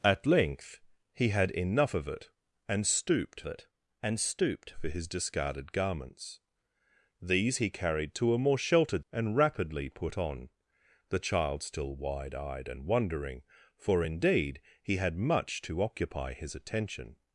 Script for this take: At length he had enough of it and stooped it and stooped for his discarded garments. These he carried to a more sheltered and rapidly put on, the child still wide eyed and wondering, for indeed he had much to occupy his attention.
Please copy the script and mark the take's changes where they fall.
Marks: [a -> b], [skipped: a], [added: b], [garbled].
At length he had enough of it and stooped it and stooped for his discarded garments. These he carried to a more sheltered and rapidly put on, the child still wide eyed and wondering, for indeed he had much to occupy his attention.